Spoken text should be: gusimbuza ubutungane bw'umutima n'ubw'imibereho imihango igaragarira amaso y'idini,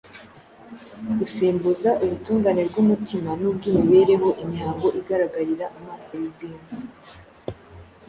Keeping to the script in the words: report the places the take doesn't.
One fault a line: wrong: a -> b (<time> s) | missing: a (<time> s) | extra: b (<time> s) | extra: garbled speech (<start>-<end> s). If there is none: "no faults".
no faults